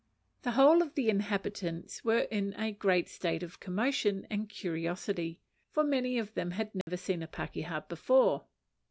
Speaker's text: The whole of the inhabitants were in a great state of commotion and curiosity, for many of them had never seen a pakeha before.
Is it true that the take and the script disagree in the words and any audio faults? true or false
true